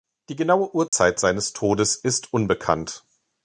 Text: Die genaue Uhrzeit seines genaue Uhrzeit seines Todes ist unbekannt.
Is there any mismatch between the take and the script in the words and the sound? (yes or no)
yes